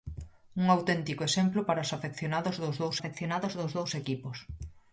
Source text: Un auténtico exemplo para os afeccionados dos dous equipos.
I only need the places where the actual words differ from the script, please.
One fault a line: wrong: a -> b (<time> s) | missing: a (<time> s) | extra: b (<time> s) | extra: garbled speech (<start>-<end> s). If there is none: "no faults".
extra: afeccionados dos dous (3.0 s)